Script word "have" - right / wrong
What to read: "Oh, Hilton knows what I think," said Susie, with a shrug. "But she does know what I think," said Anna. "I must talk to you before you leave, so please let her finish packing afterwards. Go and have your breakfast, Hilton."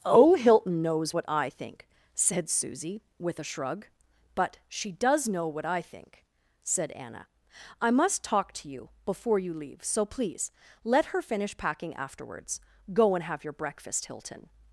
right